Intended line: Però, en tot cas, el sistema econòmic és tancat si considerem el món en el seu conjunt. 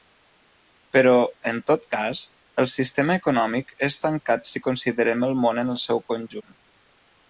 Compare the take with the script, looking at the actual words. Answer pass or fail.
pass